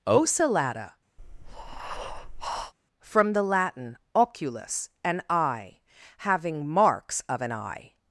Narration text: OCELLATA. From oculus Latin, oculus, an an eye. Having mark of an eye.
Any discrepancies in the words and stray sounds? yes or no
yes